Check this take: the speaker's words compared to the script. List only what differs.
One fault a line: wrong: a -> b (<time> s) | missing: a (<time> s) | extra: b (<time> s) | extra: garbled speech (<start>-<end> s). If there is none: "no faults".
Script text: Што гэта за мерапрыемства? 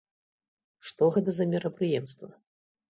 no faults